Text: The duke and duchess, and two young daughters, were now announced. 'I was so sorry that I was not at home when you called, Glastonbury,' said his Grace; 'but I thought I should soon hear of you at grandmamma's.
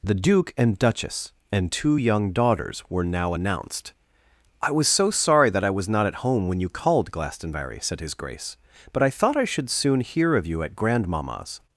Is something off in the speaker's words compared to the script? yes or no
no